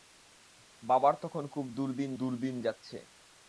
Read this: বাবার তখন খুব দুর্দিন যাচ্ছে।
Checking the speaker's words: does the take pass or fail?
fail